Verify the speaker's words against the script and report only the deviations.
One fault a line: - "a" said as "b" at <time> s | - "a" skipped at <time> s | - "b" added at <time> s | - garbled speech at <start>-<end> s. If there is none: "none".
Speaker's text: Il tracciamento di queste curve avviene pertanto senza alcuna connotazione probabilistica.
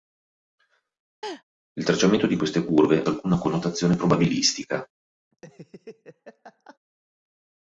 - "avviene pertanto senza" skipped at 3.0 s